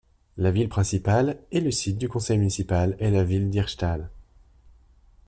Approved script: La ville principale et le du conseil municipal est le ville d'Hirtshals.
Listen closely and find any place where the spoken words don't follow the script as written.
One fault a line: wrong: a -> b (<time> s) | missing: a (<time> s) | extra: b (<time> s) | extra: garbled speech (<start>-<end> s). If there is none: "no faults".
extra: site (1.7 s)
wrong: le -> la (3.1 s)